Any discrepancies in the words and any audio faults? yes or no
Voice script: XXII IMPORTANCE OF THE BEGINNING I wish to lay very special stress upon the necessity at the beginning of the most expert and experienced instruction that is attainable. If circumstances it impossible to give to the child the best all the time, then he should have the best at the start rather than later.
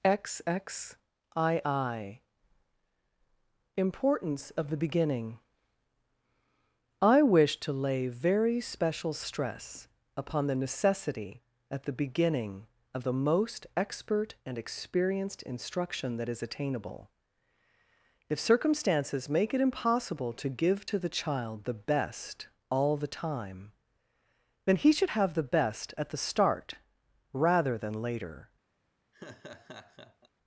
yes